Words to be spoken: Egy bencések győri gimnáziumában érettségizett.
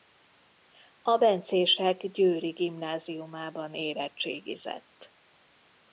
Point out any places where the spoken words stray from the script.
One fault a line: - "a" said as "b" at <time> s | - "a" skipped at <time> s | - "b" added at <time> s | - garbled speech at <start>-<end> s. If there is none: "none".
- "Egy" said as "A" at 1.0 s